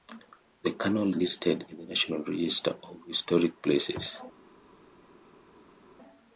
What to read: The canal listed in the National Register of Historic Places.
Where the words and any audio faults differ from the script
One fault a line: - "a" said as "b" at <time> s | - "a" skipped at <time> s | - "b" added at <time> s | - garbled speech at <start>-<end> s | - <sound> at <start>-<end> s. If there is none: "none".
none